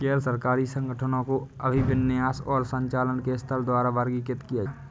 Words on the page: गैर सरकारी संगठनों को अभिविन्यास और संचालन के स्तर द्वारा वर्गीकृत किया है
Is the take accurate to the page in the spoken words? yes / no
yes